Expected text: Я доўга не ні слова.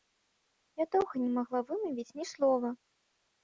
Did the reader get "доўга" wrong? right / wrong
right